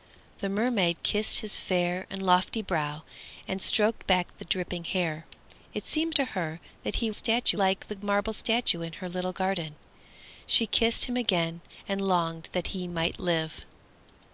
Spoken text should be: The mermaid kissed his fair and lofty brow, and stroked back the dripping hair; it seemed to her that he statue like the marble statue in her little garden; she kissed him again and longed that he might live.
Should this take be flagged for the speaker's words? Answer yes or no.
no